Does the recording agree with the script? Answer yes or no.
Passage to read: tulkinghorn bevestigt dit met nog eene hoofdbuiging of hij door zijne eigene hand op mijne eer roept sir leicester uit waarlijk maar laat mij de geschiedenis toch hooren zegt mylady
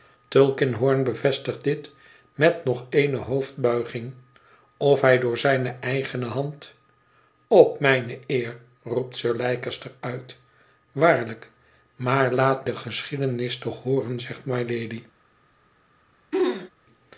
no